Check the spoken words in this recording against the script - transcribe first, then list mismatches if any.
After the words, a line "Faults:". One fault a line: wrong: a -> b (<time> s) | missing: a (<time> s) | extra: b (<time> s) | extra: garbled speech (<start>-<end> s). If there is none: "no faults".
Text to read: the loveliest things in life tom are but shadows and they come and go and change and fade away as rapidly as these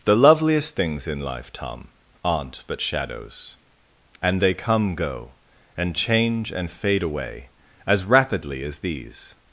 the loveliest things in life tom aren't but shadows and they come go and change and fade away as rapidly as these
Faults:
wrong: are -> aren't (2.2 s)
missing: and (4.9 s)